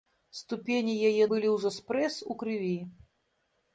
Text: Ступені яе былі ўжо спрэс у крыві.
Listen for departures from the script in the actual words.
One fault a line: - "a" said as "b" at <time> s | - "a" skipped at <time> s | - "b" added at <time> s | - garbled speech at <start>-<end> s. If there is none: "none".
none